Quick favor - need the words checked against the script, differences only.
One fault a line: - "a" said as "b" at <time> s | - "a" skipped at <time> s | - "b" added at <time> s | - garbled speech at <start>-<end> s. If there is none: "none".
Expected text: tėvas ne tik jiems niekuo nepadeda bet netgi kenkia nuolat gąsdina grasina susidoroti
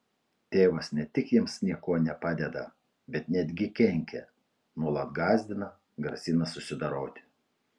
none